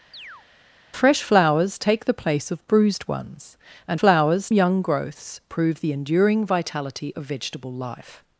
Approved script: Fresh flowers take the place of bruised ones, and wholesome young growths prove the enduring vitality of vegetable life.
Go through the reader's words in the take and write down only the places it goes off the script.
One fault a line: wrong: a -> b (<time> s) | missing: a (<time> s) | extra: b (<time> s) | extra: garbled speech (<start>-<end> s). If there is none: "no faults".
wrong: wholesome -> flowers (3.9 s)